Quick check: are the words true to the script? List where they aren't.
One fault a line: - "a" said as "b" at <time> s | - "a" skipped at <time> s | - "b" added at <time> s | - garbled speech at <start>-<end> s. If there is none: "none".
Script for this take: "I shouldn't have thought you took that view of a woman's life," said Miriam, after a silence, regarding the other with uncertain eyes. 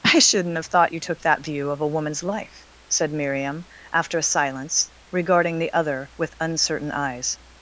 none